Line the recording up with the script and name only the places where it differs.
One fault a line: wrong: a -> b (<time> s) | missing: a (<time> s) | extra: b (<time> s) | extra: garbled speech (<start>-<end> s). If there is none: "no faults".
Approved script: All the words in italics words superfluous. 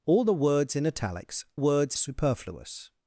no faults